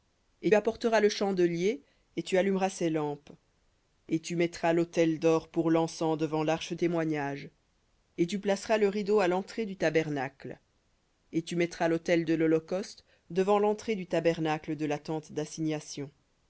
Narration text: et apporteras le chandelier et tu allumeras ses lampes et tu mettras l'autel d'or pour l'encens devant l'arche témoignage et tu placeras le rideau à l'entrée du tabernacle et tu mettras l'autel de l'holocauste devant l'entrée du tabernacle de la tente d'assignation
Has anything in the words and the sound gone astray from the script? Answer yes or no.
no